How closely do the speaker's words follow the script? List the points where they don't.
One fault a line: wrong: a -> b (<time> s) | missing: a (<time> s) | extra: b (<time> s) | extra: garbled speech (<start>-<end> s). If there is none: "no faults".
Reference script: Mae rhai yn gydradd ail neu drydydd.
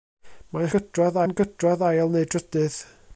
wrong: rhai -> gydradd (0.8 s)